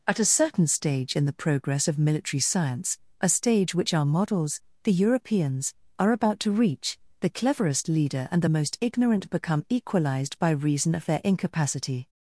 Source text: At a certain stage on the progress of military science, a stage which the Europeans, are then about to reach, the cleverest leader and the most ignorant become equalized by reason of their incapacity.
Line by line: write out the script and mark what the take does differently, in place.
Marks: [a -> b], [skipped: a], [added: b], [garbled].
At a certain stage [on -> in] the progress of military science, a stage which [added: our models] the Europeans, are [skipped: then] about to reach, the cleverest leader and the most ignorant become equalized by reason of their incapacity.